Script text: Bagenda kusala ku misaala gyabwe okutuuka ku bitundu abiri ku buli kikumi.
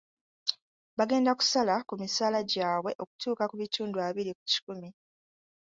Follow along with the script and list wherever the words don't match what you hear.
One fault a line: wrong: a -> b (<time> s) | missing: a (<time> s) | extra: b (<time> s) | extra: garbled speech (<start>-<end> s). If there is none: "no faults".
missing: buli (4.4 s)